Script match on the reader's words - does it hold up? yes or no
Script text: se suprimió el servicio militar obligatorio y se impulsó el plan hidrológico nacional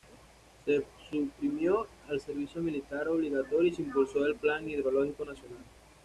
yes